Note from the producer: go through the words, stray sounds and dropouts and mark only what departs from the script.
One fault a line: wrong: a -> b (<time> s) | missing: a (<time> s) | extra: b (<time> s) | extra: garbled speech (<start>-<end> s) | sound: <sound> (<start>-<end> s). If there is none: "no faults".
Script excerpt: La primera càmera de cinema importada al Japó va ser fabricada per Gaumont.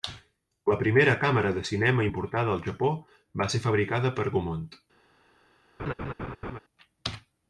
sound: laugh (5.8-6.6 s)